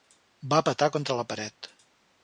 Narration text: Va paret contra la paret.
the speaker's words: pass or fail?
fail